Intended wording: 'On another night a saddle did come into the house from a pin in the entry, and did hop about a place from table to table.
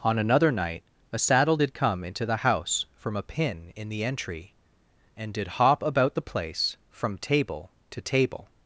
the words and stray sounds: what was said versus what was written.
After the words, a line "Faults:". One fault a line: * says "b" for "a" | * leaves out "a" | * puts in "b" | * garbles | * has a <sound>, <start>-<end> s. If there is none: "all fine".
'On another night a saddle did come into the house from a pin in the entry, and did hop about the place from table to table.
Faults:
* says "the" for "a"